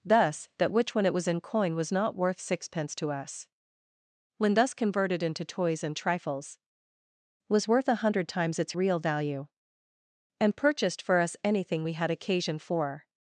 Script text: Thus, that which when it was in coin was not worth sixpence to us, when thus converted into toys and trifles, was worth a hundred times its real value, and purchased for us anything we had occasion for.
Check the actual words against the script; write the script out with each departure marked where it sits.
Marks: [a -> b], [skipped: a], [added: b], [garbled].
Thus, that which when it was in coin was not worth sixpence to us, when thus converted into toys and trifles, was worth a hundred times its real value, and purchased for us anything we had occasion for.